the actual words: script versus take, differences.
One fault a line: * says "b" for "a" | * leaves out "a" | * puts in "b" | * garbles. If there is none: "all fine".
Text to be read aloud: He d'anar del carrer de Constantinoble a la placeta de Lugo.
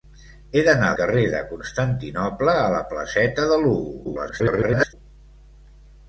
* leaves out "del"
* garbles